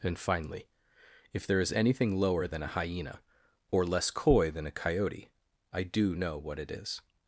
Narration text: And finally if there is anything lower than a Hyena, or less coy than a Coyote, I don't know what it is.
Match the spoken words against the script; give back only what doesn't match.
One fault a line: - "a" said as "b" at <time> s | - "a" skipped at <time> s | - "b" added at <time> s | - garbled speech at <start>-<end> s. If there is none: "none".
- "don't" said as "do" at 5.8 s